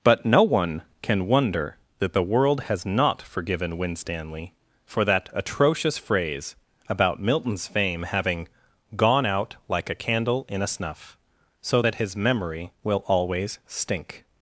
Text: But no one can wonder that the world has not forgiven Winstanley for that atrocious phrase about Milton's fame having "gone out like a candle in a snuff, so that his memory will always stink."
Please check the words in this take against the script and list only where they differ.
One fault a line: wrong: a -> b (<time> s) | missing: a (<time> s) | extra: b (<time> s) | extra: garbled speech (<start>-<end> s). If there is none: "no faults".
no faults